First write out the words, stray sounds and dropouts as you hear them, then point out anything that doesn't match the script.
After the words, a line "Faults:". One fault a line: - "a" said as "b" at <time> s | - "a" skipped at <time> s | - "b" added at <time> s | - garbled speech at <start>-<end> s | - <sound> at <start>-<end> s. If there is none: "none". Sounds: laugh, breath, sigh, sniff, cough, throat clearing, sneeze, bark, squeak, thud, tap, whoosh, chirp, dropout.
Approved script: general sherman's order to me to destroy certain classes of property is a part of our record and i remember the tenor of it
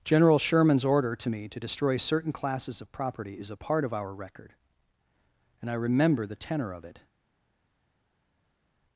general sherman's order to me to destroy certain classes of property is a part of our record and i remember the tenor of it
Faults:
none